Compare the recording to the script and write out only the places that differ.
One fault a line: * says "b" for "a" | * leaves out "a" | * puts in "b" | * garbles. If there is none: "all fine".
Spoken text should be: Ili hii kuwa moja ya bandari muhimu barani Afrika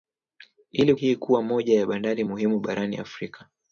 all fine